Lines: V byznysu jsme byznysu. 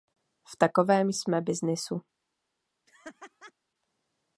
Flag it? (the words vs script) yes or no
yes